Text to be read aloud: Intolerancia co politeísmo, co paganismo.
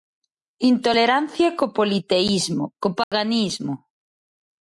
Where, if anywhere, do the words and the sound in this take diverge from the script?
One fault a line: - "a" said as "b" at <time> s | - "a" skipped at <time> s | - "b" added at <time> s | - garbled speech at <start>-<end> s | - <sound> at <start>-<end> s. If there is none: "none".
- dropout at 3.0-3.1 s